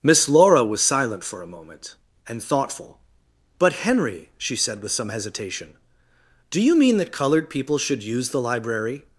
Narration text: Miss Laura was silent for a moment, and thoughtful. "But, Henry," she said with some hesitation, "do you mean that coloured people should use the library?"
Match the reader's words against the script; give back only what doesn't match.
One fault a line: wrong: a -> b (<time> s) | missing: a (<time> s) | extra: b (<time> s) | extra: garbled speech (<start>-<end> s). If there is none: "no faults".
no faults